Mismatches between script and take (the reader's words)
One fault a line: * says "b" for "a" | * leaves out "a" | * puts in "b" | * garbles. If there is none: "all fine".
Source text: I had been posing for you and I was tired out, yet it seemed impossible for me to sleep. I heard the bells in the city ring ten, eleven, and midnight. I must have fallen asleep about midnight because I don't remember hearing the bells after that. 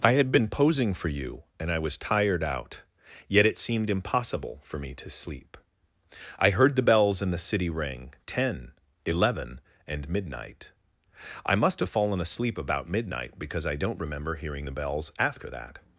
all fine